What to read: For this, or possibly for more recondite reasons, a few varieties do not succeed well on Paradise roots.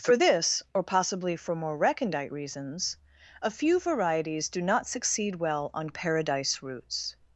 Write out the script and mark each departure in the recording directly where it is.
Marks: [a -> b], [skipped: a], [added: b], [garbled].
For this, or possibly for more recondite reasons, a few varieties do not succeed well on Paradise roots.